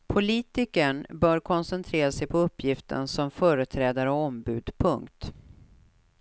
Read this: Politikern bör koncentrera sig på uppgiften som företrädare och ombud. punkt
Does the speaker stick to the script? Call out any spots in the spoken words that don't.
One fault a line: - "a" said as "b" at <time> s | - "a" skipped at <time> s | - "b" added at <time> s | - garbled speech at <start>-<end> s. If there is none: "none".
none